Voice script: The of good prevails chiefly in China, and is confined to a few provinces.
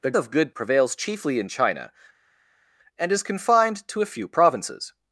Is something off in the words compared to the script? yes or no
no